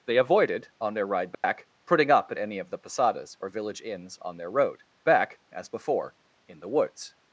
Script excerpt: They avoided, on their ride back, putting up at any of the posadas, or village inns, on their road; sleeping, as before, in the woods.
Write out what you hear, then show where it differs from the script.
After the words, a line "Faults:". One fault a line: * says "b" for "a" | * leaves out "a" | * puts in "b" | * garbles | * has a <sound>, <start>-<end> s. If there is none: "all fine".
They avoided, on their ride back, putting up at any of the posadas, or village inns, on their road; back, as before, in the woods.
Faults:
* has a dropout, 1.3-1.4 s
* says "back" for "sleeping"